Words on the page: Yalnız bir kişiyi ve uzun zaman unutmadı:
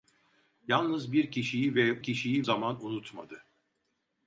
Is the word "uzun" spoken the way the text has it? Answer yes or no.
no